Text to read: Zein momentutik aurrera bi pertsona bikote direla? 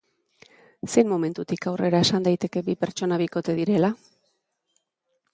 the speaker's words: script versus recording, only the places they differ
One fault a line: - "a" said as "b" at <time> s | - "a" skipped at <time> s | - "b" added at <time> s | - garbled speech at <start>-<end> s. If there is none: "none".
- "esan daiteke" added at 2.0 s